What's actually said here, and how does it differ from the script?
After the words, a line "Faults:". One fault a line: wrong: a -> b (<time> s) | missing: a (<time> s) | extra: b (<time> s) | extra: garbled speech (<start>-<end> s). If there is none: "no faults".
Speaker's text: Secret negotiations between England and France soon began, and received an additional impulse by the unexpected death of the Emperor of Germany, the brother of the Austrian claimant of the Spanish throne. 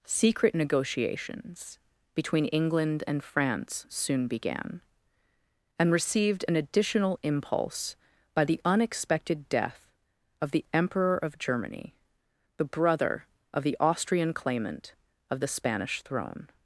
Secret negotiations between England and France soon began, and received an additional impulse by the unexpected death of the Emperor of Germany, the brother of the Austrian claimant of the Spanish throne.
Faults:
no faults